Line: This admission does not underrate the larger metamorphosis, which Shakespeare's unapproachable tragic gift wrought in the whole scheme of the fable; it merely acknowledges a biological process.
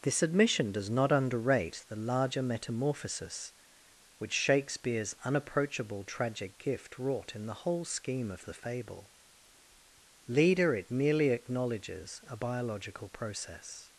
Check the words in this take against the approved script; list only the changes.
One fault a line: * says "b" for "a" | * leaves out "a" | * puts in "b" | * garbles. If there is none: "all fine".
* puts in "leader"